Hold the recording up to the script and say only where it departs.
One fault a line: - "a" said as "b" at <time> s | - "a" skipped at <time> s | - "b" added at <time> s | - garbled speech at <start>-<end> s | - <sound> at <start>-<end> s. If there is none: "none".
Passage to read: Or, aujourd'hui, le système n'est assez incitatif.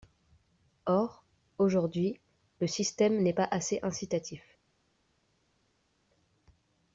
- "pas" added at 3.3 s